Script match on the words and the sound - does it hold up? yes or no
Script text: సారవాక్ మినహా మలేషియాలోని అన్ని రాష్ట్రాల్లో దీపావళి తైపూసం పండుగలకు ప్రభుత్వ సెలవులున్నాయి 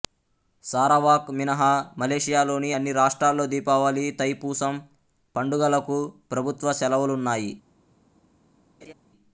no